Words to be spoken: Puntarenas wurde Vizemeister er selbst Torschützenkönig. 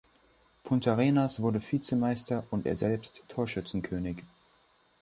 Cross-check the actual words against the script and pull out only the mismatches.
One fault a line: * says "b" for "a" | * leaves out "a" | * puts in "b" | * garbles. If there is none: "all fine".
* puts in "und"